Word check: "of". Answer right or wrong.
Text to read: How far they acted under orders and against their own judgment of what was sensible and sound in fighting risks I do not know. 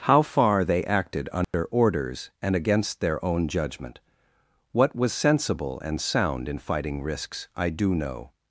wrong